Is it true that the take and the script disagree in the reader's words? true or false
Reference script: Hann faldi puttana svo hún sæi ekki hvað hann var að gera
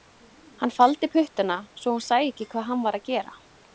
false